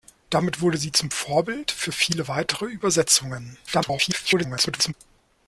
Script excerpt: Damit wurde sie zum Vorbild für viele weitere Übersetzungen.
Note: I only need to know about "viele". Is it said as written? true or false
true